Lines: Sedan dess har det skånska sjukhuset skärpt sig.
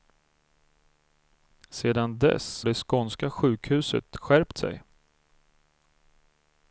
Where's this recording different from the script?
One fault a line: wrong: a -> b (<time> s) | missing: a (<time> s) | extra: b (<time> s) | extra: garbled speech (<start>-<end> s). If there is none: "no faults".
missing: har (2.6 s)